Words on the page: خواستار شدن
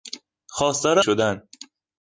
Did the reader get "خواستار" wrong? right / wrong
right